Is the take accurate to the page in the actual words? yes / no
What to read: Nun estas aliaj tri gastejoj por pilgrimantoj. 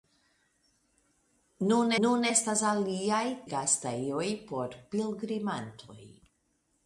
no